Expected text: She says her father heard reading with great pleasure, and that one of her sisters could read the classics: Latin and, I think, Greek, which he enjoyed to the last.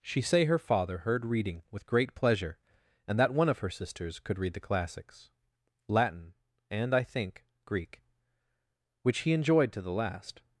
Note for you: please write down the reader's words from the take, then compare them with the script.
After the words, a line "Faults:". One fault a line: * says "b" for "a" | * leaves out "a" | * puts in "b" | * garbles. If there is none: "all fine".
She say her father heard reading with great pleasure, and that one of her sisters could read the classics: Latin and, I think, Greek, which he enjoyed to the last.
Faults:
* says "say" for "says"